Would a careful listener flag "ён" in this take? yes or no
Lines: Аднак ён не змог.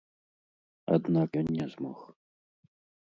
no